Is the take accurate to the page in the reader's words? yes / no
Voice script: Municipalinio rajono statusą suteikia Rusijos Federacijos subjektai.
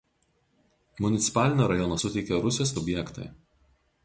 no